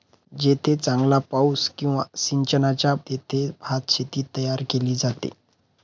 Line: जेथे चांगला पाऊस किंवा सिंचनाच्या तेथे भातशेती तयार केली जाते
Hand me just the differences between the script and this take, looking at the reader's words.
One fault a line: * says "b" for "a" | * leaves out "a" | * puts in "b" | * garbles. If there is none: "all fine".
all fine